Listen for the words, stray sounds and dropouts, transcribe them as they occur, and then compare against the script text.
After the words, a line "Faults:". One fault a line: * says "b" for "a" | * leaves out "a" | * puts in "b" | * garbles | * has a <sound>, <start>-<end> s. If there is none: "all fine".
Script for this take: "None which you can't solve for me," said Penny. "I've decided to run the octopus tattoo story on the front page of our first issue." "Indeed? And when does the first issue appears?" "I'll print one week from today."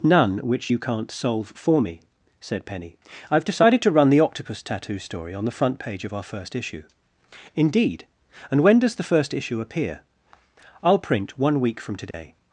"None which you can't solve for me," said Penny. "I've decided to run the octopus tattoo story on the front page of our first issue." "Indeed? And when does the first issue appear?" "I'll print one week from today."
Faults:
* says "appear" for "appears"
* has a dropout, 12.1-12.1 s